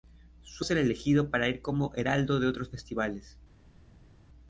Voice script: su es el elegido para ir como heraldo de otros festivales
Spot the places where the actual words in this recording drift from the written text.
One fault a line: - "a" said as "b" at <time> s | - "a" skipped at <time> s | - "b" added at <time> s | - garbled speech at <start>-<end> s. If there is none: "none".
none